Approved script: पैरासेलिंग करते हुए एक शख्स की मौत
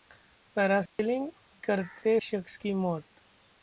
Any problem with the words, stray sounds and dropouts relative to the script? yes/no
yes